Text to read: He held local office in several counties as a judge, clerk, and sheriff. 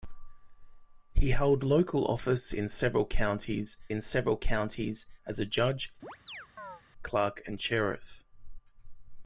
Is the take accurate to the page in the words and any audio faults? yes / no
no